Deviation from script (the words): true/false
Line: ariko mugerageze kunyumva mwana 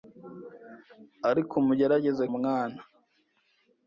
true